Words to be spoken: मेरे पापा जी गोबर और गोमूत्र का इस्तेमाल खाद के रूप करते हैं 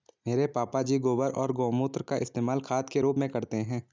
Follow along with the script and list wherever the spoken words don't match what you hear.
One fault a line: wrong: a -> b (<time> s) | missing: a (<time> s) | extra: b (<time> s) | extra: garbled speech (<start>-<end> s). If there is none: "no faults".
extra: में (3.2 s)